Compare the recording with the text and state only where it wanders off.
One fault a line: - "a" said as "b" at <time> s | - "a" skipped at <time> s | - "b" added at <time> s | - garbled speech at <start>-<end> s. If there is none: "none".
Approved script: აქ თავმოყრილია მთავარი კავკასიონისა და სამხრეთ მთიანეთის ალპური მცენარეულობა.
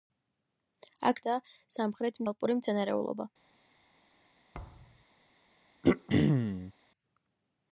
- "თავმოყრილია მთავარი კავკასიონისა" skipped at 1.2 s
- "მთიანეთის" skipped at 2.2 s